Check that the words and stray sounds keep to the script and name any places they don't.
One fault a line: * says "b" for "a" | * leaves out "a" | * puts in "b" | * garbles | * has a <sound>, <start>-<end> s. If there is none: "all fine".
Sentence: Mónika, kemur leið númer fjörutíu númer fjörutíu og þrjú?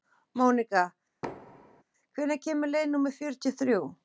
* has a thud, 1.2-1.8 s
* puts in "hvenær"
* leaves out "númer fjörutíu"